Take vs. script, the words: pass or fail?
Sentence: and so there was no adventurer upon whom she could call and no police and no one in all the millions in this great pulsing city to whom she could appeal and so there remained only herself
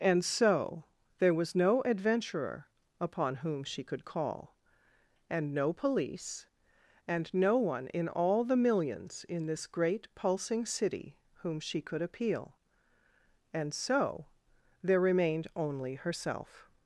fail